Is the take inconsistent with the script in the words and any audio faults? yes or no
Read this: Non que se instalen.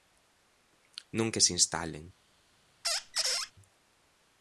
yes